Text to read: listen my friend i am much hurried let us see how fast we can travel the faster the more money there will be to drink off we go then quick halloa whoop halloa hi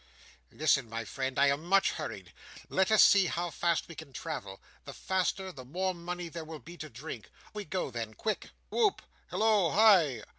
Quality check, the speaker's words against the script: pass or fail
fail